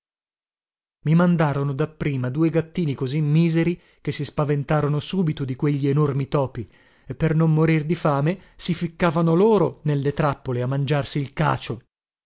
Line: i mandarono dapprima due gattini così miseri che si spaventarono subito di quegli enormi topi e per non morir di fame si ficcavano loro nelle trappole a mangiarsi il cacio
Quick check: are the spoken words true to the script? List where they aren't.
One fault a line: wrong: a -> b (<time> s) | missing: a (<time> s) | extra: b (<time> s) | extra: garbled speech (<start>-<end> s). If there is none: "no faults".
no faults